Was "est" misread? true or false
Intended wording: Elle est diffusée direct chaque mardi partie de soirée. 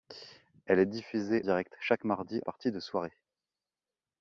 false